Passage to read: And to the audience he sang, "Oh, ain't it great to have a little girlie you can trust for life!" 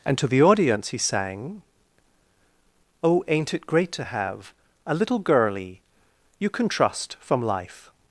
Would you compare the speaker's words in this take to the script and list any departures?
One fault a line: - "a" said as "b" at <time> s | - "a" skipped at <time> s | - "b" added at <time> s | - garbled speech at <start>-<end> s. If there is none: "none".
- "for" said as "from" at 7.2 s